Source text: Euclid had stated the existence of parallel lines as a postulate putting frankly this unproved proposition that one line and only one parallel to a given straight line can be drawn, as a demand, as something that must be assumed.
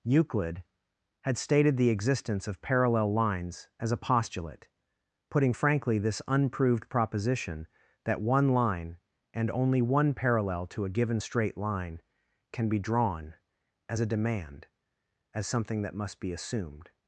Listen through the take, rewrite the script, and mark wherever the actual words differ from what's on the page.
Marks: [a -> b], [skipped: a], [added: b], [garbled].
Euclid had stated the existence of parallel lines as a postulate putting frankly this unproved proposition that one line and only one parallel to a given straight line can be drawn, as a demand, as something that must be assumed.